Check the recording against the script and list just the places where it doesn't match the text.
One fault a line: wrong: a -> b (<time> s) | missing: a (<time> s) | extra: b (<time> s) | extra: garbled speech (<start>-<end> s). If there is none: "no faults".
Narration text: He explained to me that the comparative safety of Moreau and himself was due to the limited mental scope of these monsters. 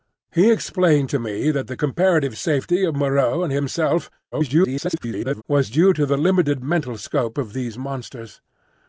extra: garbled speech (4.3-5.4 s)